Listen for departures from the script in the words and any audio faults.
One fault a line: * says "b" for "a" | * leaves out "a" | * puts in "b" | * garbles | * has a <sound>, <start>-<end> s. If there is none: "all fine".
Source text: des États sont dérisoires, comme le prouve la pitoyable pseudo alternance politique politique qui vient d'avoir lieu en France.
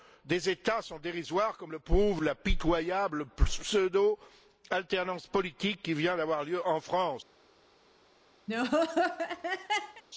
* leaves out "politique"
* has a laugh, 8.5-10.0 s